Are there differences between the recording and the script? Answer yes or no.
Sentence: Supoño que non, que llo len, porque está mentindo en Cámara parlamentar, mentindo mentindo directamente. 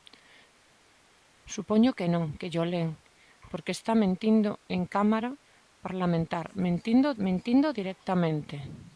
no